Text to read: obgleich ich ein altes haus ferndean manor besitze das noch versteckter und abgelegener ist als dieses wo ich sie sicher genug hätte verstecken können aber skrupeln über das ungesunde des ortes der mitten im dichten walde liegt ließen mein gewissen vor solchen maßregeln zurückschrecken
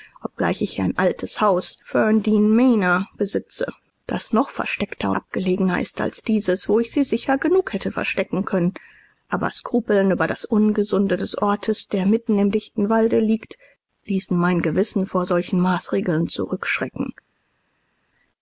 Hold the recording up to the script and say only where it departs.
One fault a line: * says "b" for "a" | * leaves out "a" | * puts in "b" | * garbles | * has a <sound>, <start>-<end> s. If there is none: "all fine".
* leaves out "und"